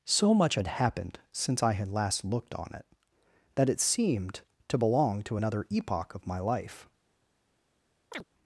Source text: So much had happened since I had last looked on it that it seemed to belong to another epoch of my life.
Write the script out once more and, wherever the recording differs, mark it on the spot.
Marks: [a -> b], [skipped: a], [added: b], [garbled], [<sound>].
So much had happened since I had last looked on it that it seemed to belong to another epoch of my life. [chirp]